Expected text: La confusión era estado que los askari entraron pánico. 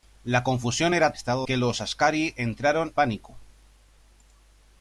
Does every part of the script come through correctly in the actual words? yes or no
yes